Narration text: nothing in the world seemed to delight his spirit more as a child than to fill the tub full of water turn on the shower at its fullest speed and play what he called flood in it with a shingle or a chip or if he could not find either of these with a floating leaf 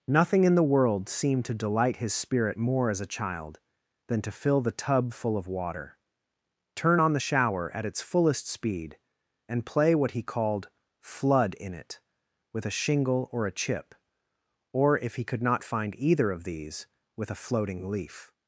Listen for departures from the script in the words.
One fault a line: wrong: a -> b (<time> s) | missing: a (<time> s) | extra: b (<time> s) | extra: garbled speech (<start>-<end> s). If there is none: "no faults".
no faults